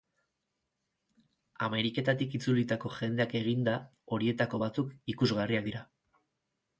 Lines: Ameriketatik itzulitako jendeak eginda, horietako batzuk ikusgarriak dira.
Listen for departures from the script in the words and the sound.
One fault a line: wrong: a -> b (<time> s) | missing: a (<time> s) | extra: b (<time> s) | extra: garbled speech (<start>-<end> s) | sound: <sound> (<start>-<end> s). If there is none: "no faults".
no faults